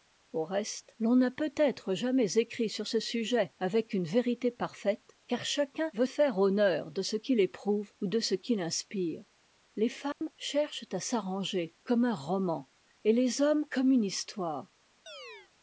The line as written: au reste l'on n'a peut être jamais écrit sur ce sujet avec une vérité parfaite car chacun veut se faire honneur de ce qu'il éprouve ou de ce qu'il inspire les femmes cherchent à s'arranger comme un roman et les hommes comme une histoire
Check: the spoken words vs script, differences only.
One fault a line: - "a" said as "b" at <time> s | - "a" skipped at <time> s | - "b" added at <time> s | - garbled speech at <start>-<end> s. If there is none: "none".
- "se" skipped at 6.1 s